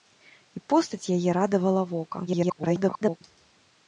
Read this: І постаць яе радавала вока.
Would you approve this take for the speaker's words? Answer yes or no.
no